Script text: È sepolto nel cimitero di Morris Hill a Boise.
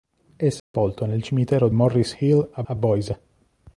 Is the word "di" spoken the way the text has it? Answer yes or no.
no